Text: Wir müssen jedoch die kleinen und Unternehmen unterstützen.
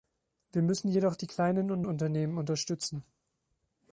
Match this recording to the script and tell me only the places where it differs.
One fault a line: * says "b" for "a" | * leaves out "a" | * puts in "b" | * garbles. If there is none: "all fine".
all fine